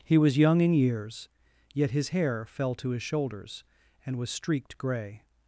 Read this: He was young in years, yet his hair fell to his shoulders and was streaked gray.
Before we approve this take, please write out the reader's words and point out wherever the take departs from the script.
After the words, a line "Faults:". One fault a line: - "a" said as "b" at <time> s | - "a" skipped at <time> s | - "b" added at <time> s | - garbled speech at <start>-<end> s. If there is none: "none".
He was young in years, yet his hair fell to his shoulders and was streaked gray.
Faults:
none